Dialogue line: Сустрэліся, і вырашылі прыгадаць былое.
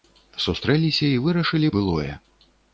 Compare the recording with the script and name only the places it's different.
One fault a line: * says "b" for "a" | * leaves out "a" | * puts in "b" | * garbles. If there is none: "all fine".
* leaves out "прыгадаць"